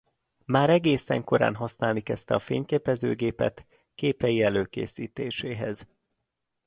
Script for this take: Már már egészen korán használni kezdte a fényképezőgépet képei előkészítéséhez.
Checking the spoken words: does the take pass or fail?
fail